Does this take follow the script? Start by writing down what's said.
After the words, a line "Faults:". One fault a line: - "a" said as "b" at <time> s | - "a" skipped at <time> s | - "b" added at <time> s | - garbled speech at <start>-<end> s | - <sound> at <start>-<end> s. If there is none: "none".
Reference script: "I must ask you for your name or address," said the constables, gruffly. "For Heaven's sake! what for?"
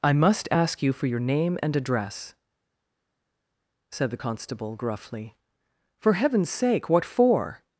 "I must ask you for your name and address," said the constable, gruffly. "For Heaven's sake! what for?"
Faults:
- "or" said as "and" at 1.6 s
- "constables" said as "constable" at 4.2 s